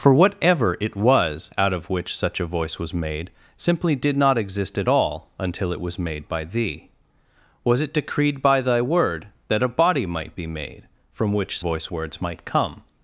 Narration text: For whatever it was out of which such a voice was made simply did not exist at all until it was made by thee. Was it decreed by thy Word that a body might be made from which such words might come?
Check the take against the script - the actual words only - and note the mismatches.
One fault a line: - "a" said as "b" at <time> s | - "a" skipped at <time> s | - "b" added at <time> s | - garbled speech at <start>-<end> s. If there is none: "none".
- "such" said as "voice" at 11.6 s